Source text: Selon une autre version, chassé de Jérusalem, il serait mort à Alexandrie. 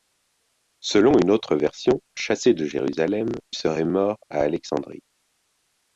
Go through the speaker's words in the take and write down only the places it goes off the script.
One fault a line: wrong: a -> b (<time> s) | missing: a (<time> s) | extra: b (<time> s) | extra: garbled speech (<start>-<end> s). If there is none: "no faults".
missing: il (3.3 s)